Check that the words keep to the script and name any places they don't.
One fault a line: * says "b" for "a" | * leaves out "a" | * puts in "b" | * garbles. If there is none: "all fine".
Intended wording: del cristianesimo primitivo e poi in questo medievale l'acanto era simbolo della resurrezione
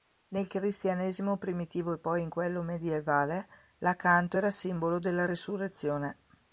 * says "nel" for "del"
* says "quello" for "questo"